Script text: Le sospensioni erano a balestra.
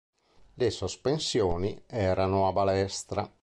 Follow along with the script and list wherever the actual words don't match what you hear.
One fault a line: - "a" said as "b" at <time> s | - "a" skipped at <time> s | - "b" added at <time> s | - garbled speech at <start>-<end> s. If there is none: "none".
none